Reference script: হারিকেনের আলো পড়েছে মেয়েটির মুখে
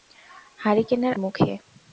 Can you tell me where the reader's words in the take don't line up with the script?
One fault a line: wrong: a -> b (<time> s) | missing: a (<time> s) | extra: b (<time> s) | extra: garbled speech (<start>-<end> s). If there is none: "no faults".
missing: আলো পড়েছে মেয়েটির (1.1 s)